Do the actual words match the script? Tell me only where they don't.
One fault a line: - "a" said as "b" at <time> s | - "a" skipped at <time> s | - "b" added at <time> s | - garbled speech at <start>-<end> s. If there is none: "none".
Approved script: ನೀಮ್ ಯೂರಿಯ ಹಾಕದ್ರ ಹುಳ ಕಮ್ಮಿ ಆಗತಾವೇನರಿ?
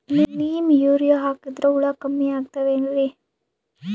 none